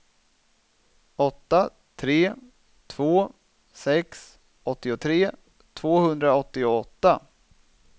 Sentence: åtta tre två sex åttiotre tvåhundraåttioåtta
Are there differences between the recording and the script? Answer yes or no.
no